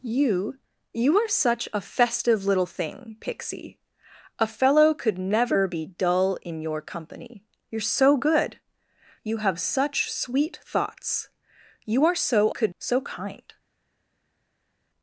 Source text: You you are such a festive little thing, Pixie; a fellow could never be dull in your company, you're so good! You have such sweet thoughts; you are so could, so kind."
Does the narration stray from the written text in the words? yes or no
no